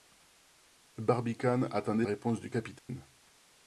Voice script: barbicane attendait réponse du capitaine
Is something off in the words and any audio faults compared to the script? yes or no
yes